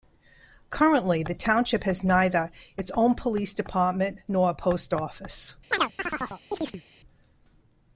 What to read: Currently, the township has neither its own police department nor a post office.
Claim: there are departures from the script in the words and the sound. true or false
true